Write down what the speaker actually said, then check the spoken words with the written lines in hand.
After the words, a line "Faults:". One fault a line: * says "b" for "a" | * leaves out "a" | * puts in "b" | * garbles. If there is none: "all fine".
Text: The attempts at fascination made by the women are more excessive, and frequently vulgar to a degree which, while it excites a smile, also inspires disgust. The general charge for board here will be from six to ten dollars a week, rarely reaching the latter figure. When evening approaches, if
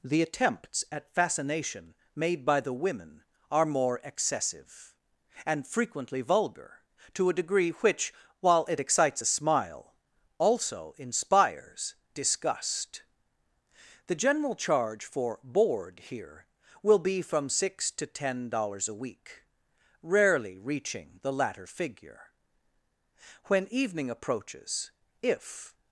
The attempts at fascination made by the women are more excessive, and frequently vulgar to a degree which, while it excites a smile, also inspires disgust. The general charge for board here will be from six to ten dollars a week, rarely reaching the latter figure. When evening approaches, if
Faults:
all fine